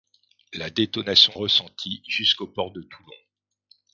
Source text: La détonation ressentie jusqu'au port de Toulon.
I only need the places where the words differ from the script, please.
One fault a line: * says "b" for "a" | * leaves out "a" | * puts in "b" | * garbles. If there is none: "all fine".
all fine